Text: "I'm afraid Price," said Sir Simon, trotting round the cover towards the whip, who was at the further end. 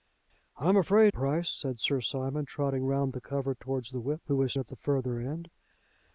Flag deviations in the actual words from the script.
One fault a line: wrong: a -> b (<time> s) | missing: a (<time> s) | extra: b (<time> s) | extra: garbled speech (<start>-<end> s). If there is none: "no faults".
no faults